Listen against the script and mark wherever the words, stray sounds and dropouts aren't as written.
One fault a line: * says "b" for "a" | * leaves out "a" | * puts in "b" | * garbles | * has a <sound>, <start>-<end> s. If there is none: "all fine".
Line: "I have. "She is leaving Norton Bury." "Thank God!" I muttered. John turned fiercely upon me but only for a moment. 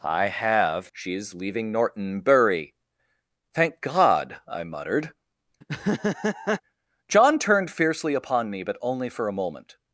* has a laugh, 5.6-6.6 s